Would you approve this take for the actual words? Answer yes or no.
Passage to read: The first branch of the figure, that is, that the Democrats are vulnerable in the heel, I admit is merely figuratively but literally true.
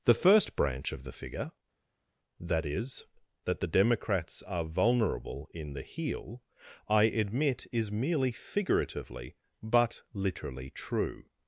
yes